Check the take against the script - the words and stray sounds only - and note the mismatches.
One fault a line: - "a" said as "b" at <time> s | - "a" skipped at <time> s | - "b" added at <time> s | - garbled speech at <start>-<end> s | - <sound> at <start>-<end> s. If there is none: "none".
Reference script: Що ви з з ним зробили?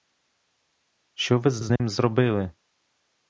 - dropout at 1.8-1.8 s